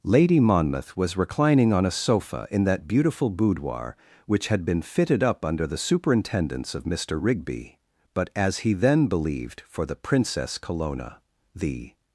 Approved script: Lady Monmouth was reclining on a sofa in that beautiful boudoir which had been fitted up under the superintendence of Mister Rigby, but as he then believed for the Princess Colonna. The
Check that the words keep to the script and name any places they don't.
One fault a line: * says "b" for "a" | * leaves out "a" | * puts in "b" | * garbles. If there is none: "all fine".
all fine